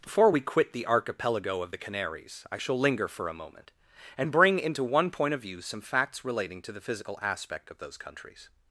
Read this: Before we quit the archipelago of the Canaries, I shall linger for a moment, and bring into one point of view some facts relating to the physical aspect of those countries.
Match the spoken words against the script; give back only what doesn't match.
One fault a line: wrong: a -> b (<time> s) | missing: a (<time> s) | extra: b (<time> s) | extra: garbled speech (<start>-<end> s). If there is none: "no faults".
no faults